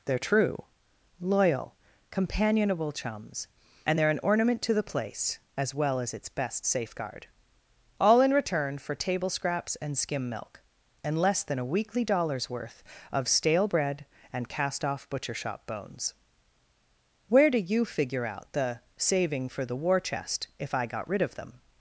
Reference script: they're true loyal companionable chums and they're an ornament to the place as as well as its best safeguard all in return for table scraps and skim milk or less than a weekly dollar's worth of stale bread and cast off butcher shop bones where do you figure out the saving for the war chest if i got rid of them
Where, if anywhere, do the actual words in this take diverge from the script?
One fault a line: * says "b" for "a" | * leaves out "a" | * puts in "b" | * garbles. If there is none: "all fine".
* leaves out "as"
* says "and" for "or"